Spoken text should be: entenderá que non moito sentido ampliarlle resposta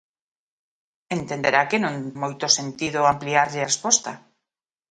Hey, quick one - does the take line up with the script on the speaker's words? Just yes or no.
yes